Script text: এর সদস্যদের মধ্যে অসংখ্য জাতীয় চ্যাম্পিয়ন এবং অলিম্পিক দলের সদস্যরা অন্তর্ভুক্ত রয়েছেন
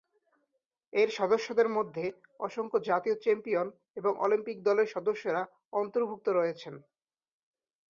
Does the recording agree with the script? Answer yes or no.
yes